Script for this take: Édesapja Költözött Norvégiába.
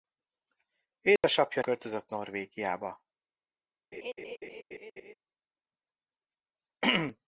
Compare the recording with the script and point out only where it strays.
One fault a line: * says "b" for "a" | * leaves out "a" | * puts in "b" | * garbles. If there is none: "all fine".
all fine